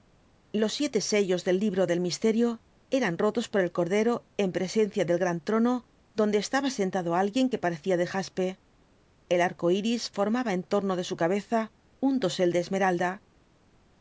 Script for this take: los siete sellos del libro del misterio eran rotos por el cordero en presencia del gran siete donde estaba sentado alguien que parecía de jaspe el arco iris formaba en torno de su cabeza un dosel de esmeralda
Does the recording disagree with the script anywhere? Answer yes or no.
yes